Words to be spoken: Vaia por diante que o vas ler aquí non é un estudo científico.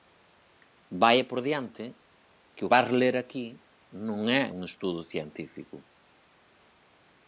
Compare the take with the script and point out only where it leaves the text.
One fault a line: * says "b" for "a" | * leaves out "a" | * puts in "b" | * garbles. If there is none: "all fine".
all fine